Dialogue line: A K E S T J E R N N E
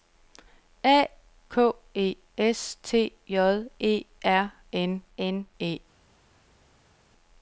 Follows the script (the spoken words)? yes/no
yes